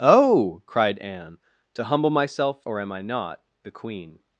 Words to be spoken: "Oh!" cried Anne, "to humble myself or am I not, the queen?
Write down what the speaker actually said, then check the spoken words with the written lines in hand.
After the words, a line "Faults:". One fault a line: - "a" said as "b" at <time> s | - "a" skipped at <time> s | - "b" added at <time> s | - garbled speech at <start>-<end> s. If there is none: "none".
"Oh!" cried Anne, "to humble myself or am I not, the queen?
Faults:
none